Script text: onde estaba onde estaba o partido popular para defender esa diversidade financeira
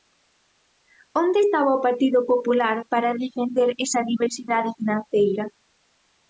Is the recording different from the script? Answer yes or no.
yes